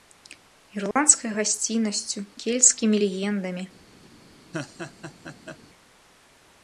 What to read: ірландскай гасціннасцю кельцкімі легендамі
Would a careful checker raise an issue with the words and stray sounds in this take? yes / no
yes